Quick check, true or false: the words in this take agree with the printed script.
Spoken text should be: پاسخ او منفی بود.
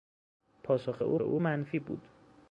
false